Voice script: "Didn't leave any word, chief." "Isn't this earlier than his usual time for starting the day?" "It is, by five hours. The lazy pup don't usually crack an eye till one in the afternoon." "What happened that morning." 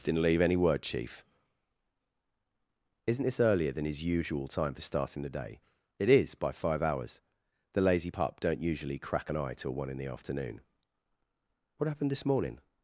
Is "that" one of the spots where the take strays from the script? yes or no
yes